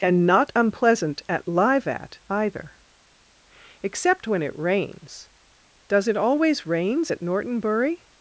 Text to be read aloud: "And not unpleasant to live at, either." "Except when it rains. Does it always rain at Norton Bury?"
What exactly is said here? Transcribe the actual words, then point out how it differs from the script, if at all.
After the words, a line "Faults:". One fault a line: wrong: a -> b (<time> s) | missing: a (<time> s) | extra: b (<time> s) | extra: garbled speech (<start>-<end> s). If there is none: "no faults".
"And not unpleasant at live at, either." "Except when it rains. Does it always rains at Norton Bury?"
Faults:
wrong: to -> at (1.3 s)
wrong: rain -> rains (6.7 s)